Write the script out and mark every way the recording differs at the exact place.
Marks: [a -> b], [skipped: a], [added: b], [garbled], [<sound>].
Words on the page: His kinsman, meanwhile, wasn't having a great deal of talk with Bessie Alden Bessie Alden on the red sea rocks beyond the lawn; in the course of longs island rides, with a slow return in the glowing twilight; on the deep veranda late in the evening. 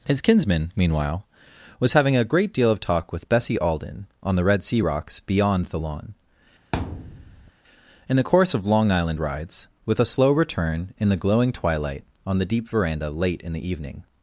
His kinsman, meanwhile, [wasn't -> was] having a great deal of talk with Bessie Alden [skipped: Bessie Alden] on the red sea rocks beyond the lawn; [thud] in the course of [longs -> long] island rides, with a slow return in the glowing twilight; on the deep veranda late in the evening.